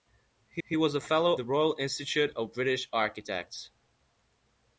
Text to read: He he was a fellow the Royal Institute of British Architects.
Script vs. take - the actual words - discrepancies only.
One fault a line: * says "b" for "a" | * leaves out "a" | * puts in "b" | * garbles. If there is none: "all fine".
all fine